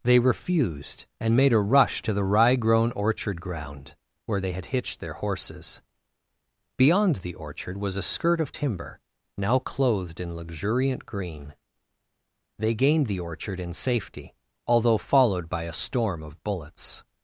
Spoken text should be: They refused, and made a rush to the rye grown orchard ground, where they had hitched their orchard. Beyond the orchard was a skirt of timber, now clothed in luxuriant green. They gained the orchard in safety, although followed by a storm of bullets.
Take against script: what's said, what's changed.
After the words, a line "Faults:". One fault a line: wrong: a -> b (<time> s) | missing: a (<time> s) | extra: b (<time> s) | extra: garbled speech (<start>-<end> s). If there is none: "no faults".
They refused, and made a rush to the rye grown orchard ground, where they had hitched their horses. Beyond the orchard was a skirt of timber, now clothed in luxuriant green. They gained the orchard in safety, although followed by a storm of bullets.
Faults:
wrong: orchard -> horses (5.1 s)